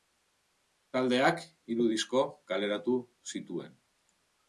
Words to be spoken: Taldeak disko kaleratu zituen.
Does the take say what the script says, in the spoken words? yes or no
no